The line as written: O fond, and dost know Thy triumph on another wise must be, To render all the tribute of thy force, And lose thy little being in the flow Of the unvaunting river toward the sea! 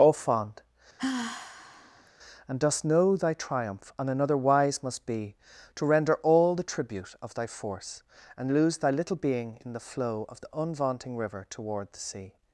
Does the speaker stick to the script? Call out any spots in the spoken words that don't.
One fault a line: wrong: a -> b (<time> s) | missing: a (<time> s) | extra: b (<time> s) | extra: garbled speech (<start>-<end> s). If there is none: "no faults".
no faults